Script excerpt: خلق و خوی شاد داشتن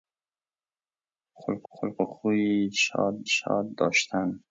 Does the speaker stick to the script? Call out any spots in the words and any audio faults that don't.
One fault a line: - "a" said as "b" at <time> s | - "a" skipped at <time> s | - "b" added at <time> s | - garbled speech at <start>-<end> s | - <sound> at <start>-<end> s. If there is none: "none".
- "خلق" added at 1.7 s
- "شاد" added at 3.3 s